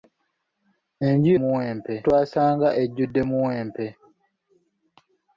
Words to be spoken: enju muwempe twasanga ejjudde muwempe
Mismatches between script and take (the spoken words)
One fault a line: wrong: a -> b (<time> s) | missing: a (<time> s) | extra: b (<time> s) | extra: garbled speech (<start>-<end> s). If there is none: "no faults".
no faults